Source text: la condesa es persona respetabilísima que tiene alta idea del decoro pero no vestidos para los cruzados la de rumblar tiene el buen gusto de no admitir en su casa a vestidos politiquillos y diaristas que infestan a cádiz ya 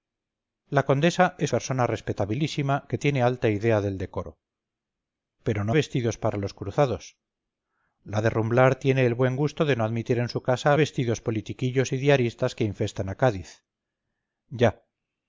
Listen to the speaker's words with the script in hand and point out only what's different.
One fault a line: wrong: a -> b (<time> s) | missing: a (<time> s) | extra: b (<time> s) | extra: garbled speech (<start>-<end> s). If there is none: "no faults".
no faults